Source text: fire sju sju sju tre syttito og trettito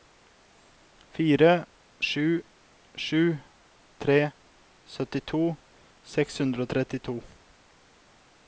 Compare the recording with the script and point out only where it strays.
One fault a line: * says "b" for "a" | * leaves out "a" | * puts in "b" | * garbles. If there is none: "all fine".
* leaves out "sju"
* puts in "seks hundre"